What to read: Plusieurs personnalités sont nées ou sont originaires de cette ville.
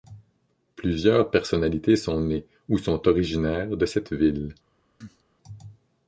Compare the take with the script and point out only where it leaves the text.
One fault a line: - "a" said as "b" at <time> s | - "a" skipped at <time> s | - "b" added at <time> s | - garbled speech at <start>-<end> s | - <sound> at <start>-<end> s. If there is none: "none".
- cough at 5.0-5.2 s